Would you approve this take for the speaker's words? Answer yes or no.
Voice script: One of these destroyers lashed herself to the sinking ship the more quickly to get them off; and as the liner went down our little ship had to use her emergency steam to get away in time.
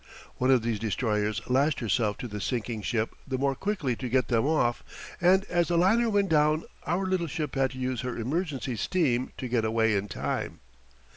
yes